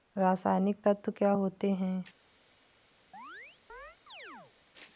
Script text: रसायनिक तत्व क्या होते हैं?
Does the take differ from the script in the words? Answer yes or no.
no